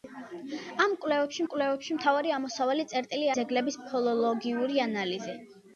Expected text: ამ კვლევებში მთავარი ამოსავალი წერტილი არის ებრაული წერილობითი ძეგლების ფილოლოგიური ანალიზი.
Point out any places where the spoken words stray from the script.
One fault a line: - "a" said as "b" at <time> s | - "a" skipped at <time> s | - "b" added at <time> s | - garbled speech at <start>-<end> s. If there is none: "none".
- "კვლევებში" added at 1.5 s
- "არის ებრაული წერილობითი" skipped at 3.3 s